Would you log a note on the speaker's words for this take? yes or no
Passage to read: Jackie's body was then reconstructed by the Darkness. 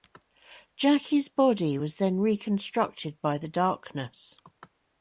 no